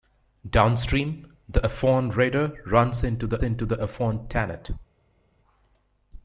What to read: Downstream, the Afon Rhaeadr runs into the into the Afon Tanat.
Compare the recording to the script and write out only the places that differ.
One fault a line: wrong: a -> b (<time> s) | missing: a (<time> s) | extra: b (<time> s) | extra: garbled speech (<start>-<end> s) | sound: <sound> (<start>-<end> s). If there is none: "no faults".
no faults